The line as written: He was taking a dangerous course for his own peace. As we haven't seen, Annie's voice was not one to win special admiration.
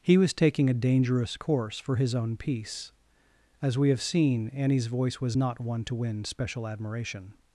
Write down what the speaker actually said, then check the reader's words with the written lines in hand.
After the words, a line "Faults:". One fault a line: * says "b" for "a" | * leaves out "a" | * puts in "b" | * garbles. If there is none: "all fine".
He was taking a dangerous course for his own peace. As we have seen, Annie's voice was not one to win special admiration.
Faults:
* says "have" for "haven't"